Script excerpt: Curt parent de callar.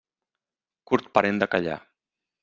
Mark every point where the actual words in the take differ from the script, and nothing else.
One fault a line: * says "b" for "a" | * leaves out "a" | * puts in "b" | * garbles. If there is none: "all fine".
all fine